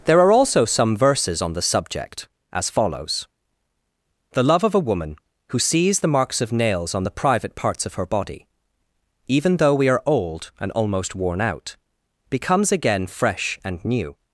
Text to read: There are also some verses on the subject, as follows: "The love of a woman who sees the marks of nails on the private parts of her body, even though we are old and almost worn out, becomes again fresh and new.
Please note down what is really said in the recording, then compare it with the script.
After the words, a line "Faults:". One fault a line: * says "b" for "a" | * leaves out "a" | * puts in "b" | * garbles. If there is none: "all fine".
There are also some verses on the subject, as follows: "The love of a woman who sees the marks of nails on the private parts of her body, even though we are old and almost worn out, becomes again fresh and new.
Faults:
all fine